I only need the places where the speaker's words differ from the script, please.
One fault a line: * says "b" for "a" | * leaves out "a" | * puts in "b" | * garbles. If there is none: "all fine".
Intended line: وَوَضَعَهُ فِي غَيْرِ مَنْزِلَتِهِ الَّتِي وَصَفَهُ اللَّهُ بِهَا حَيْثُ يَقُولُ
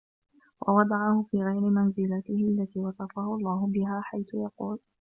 all fine